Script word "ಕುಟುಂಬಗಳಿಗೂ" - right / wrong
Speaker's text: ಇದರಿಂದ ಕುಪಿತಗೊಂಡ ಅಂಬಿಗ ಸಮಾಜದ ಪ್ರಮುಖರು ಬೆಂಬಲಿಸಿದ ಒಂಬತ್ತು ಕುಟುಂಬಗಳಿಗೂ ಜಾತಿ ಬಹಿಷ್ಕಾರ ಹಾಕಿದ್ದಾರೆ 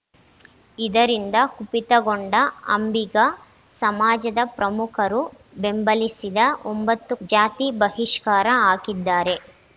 wrong